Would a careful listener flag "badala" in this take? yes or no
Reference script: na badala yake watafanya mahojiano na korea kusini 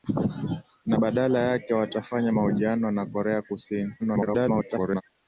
no